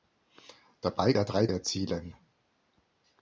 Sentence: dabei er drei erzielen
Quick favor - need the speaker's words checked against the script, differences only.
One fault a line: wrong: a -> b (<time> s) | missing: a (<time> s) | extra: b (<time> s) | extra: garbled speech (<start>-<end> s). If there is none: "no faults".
no faults